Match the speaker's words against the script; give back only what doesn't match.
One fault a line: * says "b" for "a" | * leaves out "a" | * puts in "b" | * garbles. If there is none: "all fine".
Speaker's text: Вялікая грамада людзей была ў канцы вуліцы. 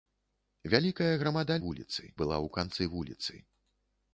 * says "вуліцы" for "людзей"